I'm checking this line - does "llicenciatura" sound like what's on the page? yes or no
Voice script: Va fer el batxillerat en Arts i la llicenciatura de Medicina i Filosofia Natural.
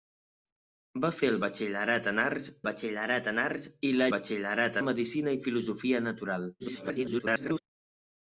no